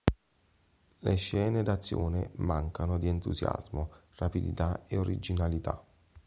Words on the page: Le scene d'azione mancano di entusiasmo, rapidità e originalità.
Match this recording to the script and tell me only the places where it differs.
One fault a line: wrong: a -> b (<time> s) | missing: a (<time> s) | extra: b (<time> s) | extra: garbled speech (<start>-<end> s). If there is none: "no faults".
no faults